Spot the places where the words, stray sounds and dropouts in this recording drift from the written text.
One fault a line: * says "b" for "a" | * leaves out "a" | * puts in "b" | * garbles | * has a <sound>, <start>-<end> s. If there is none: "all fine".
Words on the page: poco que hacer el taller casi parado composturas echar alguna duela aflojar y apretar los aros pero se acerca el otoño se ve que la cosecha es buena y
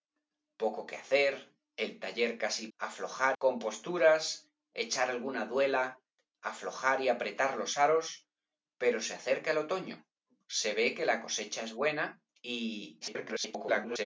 * says "aflojar" for "parado"
* garbles